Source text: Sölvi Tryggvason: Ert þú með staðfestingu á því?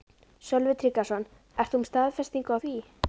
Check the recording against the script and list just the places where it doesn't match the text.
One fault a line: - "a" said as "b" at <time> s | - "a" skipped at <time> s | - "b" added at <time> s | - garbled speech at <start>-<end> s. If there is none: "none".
none